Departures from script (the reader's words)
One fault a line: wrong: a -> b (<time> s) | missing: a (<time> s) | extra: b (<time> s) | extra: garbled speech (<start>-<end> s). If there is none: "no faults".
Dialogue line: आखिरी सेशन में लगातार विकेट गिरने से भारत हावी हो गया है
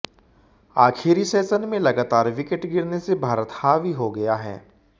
no faults